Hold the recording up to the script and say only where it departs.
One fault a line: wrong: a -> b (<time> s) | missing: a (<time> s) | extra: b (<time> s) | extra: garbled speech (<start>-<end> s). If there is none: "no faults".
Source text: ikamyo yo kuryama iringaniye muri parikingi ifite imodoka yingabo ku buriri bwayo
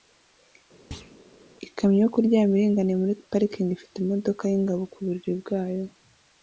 no faults